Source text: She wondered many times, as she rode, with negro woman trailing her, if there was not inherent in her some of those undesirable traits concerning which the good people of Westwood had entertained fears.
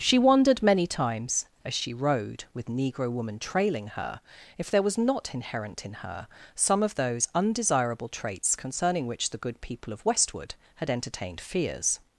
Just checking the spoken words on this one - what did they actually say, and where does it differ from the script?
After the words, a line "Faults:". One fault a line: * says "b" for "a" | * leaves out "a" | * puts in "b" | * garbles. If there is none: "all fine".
She wondered many times, as she rode, with negro woman trailing her, if there was not inherent in her some of those undesirable traits concerning which the good people of Westwood had entertained fears.
Faults:
all fine